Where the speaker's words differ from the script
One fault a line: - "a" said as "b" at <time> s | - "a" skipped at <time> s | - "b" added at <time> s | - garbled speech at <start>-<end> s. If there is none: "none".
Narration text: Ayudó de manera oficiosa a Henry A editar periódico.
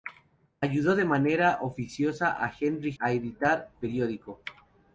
none